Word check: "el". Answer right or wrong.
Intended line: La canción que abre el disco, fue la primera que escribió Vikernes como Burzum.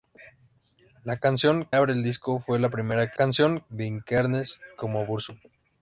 right